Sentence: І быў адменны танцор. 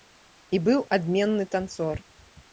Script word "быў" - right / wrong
right